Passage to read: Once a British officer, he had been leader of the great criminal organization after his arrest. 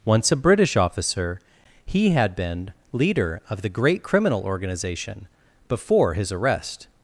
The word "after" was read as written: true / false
false